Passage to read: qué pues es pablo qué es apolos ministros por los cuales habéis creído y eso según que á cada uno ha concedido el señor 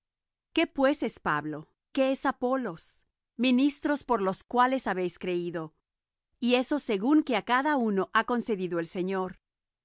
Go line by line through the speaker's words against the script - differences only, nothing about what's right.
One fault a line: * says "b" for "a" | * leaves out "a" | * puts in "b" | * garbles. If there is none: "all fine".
all fine